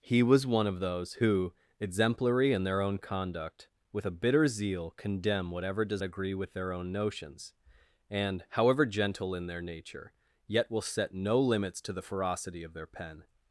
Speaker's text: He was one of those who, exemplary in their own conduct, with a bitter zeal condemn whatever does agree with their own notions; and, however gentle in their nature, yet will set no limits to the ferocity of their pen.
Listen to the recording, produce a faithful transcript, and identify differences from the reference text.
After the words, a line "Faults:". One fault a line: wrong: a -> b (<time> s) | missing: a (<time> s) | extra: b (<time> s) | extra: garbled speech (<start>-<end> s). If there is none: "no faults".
He was one of those who, exemplary in their own conduct, with a bitter zeal condemn whatever does agree with their own notions; and, however gentle in their nature, yet will set no limits to the ferocity of their pen.
Faults:
no faults